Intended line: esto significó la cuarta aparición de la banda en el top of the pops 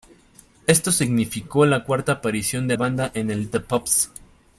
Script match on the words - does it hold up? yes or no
no